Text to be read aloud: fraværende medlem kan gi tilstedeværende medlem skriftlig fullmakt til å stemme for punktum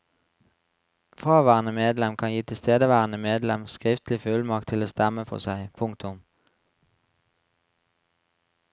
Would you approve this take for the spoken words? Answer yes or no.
no